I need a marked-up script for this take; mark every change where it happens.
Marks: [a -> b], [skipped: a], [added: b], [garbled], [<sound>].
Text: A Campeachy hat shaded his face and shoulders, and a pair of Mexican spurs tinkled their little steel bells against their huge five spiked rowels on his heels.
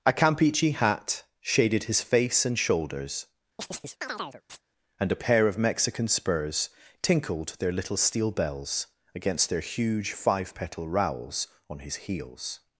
A Campeachy hat shaded his face and shoulders, [chirp] and a pair of Mexican spurs tinkled their little steel bells against their huge five [spiked -> petal] rowels on his heels.